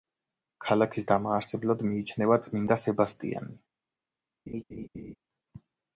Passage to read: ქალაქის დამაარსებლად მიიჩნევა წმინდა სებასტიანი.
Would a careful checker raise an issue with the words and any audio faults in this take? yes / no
yes